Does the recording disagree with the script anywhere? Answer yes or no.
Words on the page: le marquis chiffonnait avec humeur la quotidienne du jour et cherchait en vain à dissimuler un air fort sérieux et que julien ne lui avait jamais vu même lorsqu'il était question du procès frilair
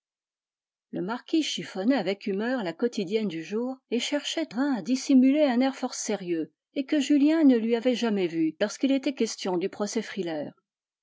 yes